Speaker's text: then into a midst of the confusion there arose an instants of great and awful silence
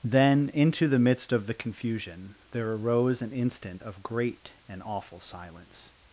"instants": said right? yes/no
no